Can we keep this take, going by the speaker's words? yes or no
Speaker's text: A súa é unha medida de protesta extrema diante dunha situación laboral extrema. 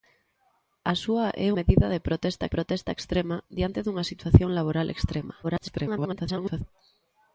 no